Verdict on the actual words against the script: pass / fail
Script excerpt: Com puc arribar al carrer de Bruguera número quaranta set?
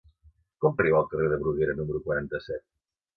fail